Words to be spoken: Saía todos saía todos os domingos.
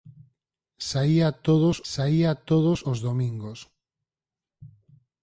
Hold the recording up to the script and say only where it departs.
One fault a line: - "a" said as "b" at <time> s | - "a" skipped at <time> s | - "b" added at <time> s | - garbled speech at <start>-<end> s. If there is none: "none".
none